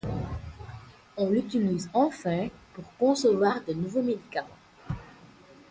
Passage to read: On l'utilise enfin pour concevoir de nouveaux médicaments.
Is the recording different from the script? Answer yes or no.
no